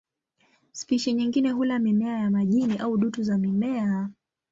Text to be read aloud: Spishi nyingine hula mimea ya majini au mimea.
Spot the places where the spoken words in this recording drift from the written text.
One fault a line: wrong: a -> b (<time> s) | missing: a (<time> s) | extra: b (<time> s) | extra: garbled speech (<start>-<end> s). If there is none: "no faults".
extra: dutu za (3.0 s)